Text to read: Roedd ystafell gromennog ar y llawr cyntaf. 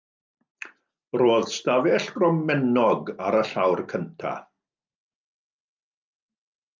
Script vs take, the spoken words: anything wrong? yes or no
no